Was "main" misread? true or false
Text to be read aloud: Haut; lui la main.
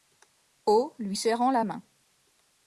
false